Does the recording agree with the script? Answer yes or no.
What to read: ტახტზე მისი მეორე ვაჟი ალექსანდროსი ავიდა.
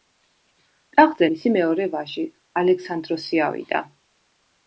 yes